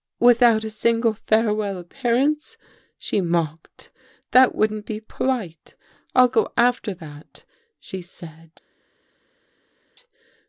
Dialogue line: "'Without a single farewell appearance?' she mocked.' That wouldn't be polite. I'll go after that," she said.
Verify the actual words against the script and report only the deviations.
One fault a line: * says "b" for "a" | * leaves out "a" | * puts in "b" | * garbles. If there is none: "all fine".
all fine